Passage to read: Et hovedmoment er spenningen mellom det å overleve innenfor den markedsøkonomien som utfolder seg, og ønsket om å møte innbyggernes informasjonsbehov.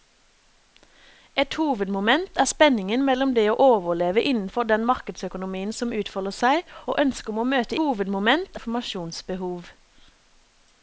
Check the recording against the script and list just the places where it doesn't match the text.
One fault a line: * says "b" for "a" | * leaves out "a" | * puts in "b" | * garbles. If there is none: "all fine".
* says "hovedmoment" for "innbyggernes"